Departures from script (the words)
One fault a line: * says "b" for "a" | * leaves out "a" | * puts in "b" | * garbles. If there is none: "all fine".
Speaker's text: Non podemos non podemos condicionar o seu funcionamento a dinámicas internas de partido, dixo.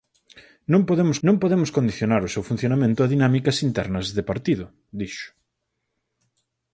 all fine